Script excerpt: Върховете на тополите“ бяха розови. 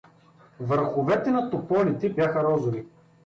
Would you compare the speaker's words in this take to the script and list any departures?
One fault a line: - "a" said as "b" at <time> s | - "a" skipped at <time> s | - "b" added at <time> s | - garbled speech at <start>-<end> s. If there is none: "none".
none